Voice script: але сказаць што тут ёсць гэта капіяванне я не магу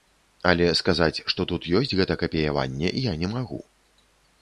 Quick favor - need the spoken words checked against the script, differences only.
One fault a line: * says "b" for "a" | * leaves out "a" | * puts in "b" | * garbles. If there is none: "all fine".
all fine